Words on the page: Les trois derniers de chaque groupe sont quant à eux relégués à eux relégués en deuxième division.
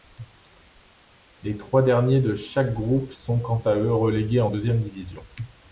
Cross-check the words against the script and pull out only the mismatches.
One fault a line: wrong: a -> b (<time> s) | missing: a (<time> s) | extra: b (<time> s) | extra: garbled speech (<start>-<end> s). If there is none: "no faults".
missing: à eux relégués (4.4 s)